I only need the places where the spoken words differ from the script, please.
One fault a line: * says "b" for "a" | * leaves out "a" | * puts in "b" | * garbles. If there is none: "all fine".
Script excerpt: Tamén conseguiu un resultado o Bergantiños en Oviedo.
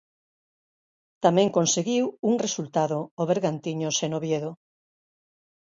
all fine